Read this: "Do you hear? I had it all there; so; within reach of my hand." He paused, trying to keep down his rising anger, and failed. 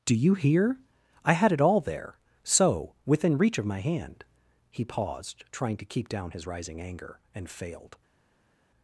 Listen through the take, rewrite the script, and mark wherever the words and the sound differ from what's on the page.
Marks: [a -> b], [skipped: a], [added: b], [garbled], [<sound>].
"Do you hear? I had it all there; so; within reach of my hand." He paused, trying to keep down his rising anger, and failed.